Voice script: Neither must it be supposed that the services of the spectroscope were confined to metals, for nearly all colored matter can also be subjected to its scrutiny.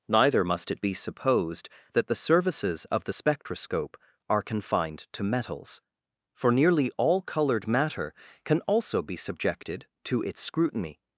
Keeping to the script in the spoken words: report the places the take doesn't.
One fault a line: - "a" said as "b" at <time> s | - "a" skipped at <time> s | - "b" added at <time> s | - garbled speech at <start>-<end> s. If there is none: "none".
- "were" said as "are" at 4.3 s